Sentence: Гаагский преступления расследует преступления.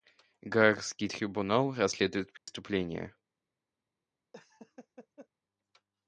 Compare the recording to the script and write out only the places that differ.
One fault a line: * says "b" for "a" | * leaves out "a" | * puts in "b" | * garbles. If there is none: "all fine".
* says "трибунал" for "преступления"